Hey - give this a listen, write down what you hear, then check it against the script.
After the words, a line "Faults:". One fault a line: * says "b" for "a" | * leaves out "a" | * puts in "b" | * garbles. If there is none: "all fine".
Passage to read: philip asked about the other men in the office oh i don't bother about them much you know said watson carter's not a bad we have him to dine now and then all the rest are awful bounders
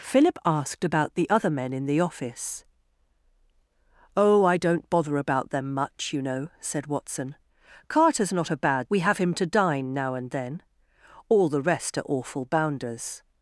philip asked about the other men in the office oh i don't bother about them much you know said watson carter's not a bad we have him to dine now and then all the rest are awful bounders
Faults:
all fine